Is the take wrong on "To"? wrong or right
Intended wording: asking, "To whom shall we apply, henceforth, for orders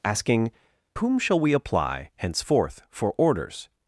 wrong